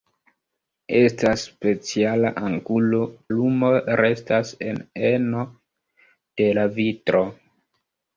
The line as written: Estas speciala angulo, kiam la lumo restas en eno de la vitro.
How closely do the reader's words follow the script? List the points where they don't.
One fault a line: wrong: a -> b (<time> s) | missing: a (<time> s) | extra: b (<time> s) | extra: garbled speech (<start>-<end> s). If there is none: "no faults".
missing: kiam la (3.0 s)